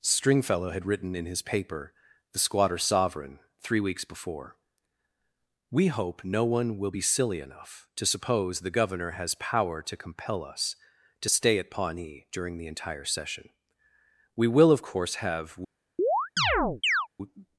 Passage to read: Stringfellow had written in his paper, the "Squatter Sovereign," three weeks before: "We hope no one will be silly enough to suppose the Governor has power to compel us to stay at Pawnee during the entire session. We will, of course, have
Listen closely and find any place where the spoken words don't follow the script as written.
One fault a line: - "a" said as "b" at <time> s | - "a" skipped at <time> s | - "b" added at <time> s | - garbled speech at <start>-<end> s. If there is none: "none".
none